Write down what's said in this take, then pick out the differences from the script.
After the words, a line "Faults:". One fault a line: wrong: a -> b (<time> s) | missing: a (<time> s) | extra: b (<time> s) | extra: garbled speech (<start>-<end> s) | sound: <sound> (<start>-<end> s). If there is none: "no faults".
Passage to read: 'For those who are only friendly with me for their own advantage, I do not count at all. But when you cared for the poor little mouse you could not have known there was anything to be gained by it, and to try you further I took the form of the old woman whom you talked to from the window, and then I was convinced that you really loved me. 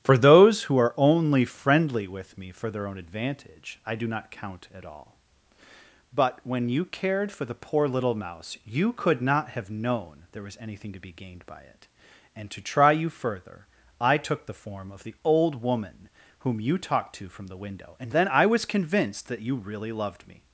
'For those who are only friendly with me for their own advantage, I do not count at all. But when you cared for the poor little mouse you could not have known there was anything to be gained by it, and to try you further I took the form of the old woman whom you talked to from the window, and then I was convinced that you really loved me.
Faults:
no faults